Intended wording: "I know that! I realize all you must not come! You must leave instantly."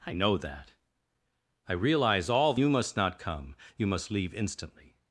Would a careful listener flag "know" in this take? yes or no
no